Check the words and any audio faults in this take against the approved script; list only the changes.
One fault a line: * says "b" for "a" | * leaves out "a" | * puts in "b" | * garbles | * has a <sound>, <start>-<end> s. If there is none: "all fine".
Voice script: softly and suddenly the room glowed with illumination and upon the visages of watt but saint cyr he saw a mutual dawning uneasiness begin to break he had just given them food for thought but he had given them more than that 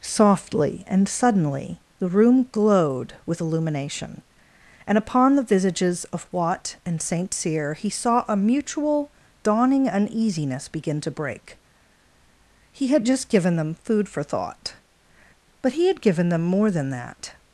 * says "and" for "but"